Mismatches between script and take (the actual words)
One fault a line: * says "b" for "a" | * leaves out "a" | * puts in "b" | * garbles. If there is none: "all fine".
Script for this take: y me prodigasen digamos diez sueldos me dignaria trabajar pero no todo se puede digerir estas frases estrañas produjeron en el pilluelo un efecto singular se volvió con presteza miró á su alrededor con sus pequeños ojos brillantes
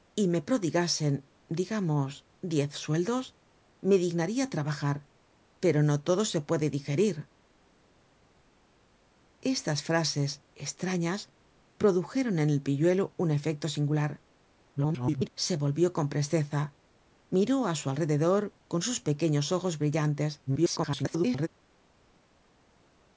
* garbles
* garbles